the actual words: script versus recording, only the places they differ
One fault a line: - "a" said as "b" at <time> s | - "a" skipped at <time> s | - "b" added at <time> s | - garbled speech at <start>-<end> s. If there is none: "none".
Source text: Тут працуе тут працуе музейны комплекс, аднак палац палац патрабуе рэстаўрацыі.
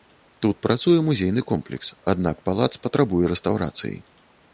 - "тут працуе" skipped at 0.9 s
- "палац" skipped at 2.7 s